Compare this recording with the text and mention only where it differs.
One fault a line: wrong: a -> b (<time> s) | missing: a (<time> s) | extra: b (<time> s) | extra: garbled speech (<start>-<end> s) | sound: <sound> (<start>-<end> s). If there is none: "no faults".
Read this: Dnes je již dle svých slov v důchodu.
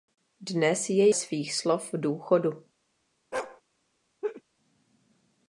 missing: již dle (1.1 s)
sound: bark (3.3-3.6 s)
sound: laugh (4.2-4.4 s)